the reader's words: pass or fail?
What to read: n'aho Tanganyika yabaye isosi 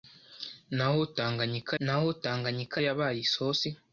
fail